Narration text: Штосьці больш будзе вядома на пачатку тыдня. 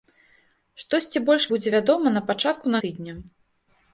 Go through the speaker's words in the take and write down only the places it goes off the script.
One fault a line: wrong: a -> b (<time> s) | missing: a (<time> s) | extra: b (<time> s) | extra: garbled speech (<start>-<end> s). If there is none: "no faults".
no faults